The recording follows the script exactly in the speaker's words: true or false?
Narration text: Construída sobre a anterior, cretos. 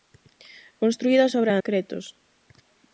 false